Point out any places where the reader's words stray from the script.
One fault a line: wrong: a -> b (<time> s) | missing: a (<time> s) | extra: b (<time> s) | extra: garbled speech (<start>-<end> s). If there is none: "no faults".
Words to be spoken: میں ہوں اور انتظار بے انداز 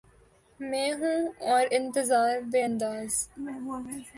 no faults